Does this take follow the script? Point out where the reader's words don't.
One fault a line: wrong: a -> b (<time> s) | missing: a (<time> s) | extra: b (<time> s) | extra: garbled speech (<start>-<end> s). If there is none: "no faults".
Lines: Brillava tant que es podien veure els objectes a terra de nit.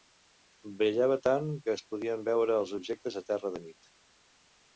no faults